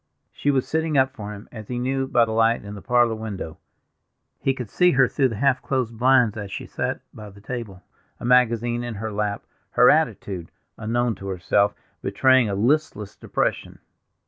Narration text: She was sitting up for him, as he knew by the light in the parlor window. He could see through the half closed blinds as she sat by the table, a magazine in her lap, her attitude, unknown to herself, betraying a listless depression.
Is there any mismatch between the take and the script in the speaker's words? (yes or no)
yes